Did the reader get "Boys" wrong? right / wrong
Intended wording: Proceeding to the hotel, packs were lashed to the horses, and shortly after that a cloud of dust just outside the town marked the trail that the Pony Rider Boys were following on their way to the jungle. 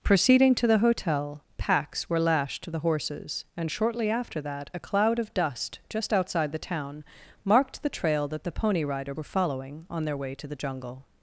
wrong